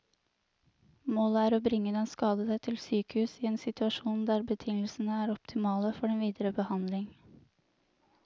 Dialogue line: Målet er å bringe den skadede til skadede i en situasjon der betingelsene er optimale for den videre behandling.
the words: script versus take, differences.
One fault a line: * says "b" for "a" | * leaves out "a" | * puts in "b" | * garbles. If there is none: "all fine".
* says "sykehus" for "skadede"